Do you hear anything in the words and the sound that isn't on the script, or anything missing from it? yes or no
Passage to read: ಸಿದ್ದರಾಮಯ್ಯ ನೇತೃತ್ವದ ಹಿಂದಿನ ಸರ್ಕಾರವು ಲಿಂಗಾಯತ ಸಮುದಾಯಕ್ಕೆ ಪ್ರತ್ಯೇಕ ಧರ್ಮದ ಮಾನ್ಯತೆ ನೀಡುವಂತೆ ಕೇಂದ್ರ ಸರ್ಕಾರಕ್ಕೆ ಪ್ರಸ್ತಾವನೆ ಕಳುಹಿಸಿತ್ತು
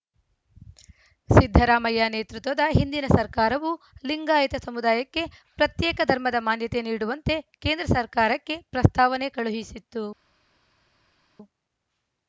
no